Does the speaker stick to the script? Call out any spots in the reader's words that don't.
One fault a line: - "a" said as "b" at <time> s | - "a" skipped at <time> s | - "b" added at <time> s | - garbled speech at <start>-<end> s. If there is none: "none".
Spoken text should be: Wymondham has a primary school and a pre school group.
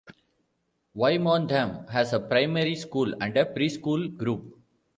none